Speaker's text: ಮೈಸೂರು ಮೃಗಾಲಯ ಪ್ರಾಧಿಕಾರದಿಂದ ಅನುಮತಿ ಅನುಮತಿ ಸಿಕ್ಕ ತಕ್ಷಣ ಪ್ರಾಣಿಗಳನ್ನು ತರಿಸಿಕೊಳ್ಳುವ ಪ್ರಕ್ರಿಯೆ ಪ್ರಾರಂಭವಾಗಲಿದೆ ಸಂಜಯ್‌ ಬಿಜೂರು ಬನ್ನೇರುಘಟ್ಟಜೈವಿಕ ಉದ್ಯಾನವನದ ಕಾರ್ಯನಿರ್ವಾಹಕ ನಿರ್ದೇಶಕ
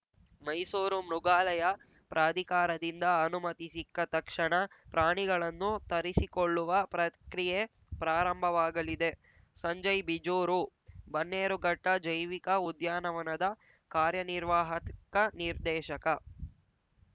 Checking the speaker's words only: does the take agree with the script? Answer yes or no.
no